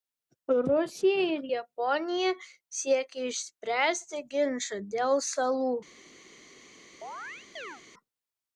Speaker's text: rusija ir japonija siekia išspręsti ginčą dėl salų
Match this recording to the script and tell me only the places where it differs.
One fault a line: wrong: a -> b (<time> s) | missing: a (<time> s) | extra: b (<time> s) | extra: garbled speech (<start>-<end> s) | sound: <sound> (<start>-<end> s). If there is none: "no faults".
sound: chirp (7.0-7.8 s)